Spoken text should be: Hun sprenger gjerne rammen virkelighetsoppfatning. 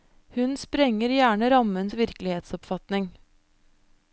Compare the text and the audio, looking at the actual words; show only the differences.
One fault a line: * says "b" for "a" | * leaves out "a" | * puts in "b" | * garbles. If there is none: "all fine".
all fine